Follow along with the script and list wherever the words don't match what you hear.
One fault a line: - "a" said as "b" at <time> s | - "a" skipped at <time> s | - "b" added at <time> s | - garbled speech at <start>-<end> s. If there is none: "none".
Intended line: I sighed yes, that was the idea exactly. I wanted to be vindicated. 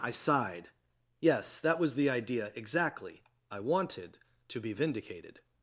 none